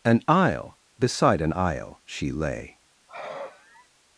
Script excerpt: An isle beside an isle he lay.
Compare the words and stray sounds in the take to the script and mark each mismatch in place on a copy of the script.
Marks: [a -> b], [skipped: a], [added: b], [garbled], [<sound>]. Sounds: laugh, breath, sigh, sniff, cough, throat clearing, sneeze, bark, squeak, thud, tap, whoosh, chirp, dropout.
An isle beside an isle [he -> she] lay. [sigh]